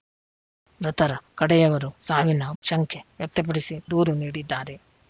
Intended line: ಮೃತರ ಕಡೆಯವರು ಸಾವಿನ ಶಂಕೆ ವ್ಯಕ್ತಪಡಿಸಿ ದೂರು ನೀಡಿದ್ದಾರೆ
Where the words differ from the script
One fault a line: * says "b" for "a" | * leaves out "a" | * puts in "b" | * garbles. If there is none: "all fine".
all fine